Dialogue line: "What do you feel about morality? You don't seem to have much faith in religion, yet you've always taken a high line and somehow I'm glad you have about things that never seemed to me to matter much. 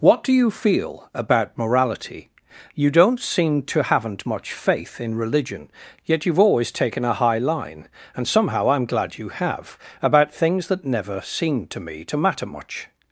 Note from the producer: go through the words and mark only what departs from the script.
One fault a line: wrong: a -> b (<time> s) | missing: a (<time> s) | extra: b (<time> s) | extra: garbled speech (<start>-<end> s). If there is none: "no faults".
wrong: have -> haven't (3.8 s)